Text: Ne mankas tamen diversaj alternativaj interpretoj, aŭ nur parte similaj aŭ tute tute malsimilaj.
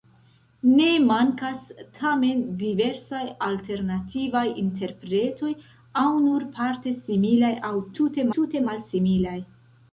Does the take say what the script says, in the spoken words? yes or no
yes